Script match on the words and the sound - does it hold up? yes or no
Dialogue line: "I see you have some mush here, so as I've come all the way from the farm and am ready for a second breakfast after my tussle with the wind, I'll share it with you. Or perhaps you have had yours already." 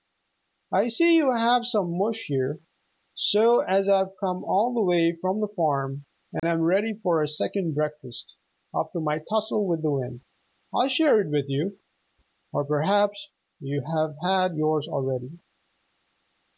no